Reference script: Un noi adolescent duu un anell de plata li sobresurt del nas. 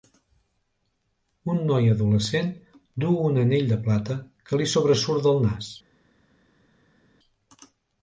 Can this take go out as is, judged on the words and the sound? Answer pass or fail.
fail